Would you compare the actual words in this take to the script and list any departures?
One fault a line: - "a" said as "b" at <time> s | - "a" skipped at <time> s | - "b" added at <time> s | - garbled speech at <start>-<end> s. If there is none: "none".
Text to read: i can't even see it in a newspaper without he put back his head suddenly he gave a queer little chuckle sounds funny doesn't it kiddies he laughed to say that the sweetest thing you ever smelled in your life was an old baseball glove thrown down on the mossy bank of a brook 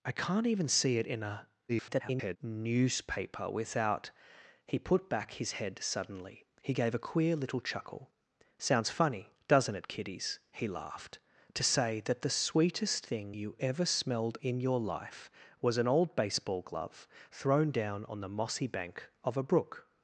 - garbled speech at 1.7-2.4 s